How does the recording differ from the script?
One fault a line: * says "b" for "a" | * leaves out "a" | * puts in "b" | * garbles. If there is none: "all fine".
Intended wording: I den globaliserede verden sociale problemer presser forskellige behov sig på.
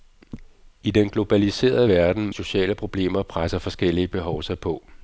all fine